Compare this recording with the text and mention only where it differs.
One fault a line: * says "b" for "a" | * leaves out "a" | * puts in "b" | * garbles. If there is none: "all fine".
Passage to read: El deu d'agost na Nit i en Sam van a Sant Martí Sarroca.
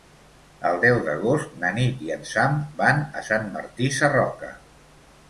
all fine